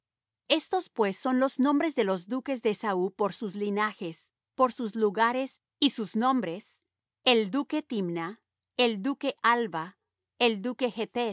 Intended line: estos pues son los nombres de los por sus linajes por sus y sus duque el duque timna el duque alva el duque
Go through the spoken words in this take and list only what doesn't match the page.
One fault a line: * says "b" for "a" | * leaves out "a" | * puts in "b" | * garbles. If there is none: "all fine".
* puts in "duques de esaú"
* puts in "lugares"
* says "nombres" for "duque"